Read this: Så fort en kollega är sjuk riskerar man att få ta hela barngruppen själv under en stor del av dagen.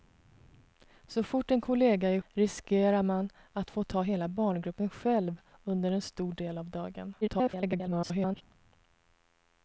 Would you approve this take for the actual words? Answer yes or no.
no